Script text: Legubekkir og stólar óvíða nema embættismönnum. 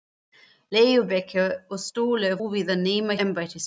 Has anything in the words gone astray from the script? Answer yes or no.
no